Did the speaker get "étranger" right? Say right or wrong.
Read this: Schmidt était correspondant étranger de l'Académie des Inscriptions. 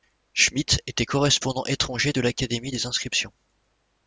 right